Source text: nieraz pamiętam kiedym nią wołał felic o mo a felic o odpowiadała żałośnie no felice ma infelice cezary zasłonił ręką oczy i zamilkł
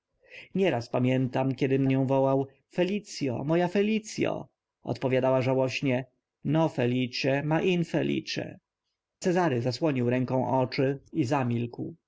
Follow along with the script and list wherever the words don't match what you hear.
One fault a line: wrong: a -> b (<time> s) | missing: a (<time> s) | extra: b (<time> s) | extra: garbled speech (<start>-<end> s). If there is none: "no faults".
no faults